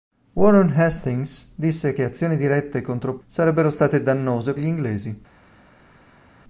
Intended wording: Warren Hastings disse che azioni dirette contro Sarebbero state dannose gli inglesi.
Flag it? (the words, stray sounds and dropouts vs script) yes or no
no